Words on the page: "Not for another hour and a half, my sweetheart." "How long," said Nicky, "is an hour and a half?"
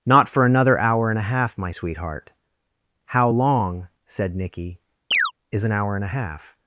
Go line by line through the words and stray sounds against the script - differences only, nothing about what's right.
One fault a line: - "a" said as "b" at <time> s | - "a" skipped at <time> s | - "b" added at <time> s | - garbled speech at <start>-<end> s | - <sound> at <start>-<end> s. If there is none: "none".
- chirp at 5.1-5.3 s